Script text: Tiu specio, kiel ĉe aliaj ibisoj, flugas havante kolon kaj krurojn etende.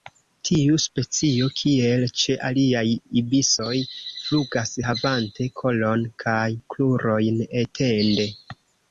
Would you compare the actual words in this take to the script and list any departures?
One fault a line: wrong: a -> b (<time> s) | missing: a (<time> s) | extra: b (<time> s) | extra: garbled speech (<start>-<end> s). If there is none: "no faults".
no faults